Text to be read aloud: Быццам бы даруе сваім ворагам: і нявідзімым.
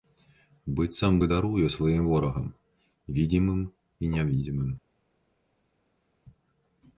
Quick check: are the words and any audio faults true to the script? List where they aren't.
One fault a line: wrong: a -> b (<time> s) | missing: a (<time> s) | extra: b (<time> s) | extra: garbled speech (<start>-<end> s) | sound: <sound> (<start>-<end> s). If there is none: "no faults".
extra: відзімым (3.2 s)